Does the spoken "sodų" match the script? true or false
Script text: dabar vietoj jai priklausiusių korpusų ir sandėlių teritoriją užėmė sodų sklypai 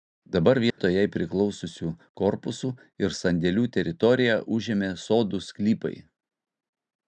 true